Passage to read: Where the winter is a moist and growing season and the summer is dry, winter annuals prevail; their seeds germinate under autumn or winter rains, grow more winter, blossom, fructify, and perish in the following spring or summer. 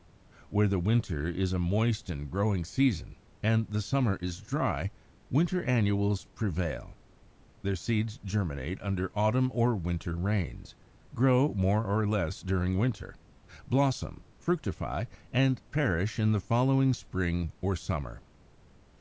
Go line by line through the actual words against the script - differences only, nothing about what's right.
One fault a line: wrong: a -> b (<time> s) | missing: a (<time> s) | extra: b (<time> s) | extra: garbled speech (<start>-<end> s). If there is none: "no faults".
extra: or less during (11.8 s)